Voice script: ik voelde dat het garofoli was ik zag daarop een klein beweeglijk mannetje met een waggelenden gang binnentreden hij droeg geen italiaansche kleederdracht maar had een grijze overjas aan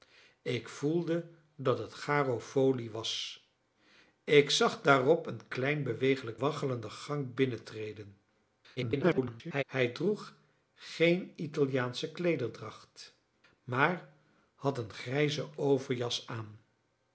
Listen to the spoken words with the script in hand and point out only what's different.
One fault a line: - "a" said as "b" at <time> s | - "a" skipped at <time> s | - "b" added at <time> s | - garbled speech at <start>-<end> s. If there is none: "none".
- "mannetje met een" skipped at 6.4 s
- garbled speech at 8.8-9.6 s